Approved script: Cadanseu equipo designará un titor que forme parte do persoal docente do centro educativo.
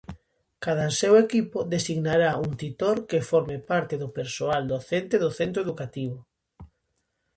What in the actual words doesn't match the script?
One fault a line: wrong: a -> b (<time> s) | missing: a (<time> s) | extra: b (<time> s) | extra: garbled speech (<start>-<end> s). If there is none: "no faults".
no faults